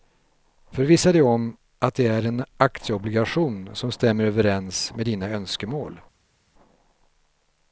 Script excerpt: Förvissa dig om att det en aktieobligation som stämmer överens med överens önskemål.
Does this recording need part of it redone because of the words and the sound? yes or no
yes